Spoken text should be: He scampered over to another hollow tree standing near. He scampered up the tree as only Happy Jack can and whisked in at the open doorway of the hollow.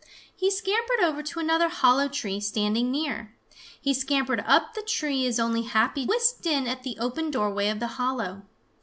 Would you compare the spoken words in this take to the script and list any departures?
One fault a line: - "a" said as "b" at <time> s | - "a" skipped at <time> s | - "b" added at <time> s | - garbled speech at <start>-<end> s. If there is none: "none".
- "Jack can and" skipped at 6.1 s